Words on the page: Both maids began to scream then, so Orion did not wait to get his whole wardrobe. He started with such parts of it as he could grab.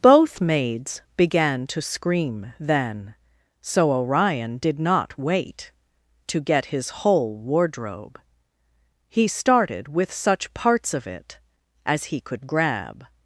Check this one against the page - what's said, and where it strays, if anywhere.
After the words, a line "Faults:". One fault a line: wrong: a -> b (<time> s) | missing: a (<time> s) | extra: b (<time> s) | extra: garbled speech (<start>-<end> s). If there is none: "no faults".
Both maids began to scream then, so Orion did not wait to get his whole wardrobe. He started with such parts of it as he could grab.
Faults:
no faults